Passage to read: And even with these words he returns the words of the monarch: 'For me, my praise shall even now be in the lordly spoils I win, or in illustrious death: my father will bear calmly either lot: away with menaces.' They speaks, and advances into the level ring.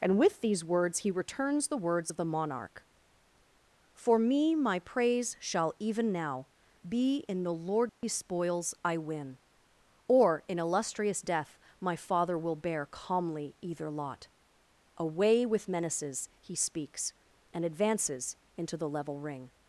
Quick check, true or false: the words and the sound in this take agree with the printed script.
false